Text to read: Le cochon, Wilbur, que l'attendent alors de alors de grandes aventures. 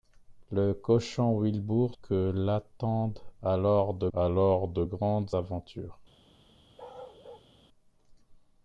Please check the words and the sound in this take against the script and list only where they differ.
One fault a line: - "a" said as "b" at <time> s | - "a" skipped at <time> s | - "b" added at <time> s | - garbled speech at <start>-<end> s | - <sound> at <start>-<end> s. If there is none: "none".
- bark at 6.8-7.5 s